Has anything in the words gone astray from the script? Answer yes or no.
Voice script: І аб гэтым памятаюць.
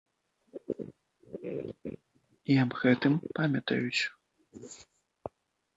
no